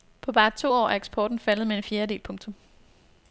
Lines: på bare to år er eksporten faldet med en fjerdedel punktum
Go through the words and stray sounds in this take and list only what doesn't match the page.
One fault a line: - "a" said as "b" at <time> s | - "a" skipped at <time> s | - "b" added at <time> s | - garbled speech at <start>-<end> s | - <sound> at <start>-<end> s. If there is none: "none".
none